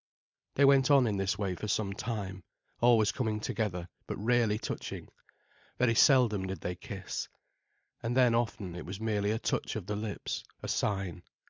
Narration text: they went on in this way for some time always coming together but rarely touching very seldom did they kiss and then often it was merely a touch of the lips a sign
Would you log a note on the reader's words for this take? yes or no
no